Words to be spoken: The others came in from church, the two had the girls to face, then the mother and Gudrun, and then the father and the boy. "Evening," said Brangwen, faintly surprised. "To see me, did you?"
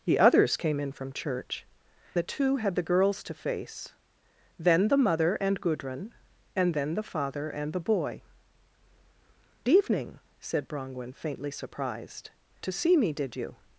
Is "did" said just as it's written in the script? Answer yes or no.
yes